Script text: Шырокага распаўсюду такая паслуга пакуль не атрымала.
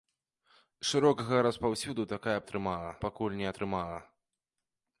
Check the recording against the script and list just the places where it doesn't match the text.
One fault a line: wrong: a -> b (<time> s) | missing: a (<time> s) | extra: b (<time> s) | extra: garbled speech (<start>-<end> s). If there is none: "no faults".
wrong: паслуга -> атрымала (2.4 s)